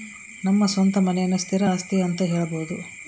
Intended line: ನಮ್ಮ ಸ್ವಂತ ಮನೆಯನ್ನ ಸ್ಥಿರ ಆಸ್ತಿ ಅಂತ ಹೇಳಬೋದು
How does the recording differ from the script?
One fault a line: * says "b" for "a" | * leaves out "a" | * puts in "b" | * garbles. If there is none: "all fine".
all fine